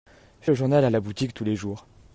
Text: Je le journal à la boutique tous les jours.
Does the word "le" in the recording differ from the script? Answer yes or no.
no